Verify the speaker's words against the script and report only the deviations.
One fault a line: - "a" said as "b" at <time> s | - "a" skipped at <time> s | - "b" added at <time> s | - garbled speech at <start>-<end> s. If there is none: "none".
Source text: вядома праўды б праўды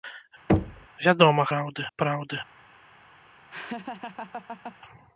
none